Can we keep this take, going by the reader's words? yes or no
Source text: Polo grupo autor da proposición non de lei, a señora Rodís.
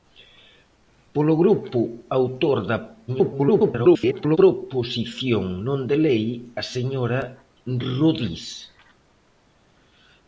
no